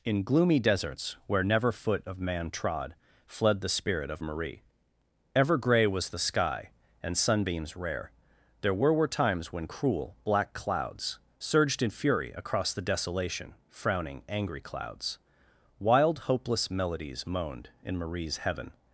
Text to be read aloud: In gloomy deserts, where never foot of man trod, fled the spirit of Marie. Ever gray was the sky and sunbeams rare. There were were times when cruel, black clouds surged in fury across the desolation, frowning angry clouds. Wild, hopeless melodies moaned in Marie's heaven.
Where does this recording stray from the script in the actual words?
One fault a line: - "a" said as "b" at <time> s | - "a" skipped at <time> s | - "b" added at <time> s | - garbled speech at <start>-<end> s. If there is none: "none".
none